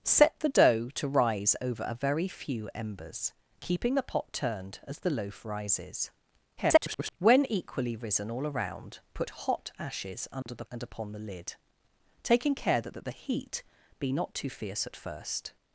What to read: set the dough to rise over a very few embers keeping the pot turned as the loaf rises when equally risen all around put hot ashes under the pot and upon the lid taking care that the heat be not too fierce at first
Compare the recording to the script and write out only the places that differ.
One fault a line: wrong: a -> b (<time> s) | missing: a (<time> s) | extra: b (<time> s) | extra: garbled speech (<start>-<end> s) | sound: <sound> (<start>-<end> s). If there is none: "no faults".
extra: garbled speech (6.6-7.2 s)
sound: dropout (10.4-10.5 s)
missing: pot (10.6 s)
extra: that (12.9 s)